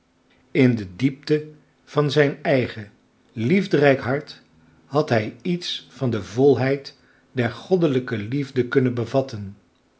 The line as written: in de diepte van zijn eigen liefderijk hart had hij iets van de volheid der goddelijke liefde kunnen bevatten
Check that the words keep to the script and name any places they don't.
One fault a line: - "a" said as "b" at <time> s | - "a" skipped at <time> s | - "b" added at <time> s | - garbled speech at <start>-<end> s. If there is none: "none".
none